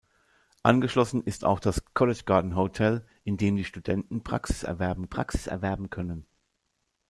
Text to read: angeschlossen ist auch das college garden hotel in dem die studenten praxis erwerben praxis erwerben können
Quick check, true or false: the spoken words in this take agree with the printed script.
true